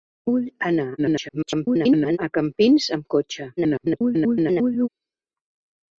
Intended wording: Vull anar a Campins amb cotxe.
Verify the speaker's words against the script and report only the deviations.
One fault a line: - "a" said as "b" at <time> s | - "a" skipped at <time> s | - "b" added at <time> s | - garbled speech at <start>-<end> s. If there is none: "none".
- garbled speech at 1.0-2.2 s
- garbled speech at 3.6-4.9 s